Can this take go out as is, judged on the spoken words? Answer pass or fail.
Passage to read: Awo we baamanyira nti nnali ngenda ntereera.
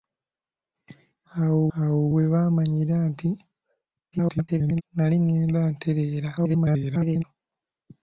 fail